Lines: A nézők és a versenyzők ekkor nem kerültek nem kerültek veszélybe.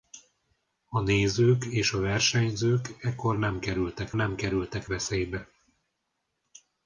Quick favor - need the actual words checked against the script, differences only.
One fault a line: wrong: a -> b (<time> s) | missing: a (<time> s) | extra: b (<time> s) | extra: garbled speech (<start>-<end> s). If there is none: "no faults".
no faults